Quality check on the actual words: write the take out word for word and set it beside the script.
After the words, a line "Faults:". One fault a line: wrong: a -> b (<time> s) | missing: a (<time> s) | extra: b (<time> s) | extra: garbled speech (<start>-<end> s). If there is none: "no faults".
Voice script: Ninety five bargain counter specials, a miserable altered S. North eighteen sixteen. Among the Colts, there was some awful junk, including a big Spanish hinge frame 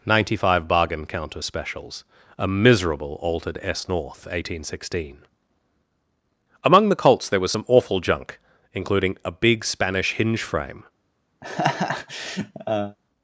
Ninety five bargain counter specials, a miserable altered S. North eighteen sixteen. Among the Colts, there was some awful junk, including a big Spanish hinge frame
Faults:
no faults